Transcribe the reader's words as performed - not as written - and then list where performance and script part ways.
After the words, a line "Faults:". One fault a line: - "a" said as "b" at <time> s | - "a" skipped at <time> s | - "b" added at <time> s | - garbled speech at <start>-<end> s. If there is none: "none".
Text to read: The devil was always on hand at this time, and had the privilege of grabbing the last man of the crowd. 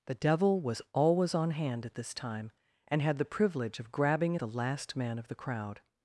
The devil was always on hand at this time, and had the privilege of grabbing the last man of the crowd.
Faults:
none